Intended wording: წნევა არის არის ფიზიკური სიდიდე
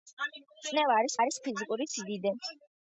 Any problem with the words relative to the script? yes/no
no